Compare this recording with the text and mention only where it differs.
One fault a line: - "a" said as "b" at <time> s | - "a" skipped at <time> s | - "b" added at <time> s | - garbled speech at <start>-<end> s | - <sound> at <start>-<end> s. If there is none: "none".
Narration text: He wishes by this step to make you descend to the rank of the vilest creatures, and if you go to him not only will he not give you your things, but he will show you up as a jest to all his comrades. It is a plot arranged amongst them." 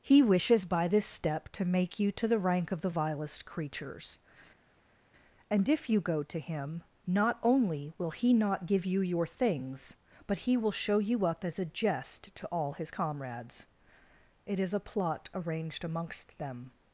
- "descend" skipped at 2.1 s